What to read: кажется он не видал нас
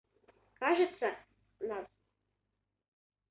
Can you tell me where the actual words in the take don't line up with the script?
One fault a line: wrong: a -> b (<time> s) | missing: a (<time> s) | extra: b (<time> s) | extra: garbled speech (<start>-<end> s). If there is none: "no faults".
missing: он не видал (1.1 s)